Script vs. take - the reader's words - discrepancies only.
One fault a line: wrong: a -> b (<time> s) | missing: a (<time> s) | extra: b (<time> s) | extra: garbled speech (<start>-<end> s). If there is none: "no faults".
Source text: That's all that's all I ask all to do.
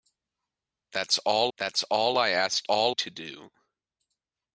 no faults